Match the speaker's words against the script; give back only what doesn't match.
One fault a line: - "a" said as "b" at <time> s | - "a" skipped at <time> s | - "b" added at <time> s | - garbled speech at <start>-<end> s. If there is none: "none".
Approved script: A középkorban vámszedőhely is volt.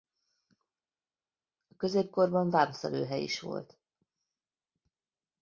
none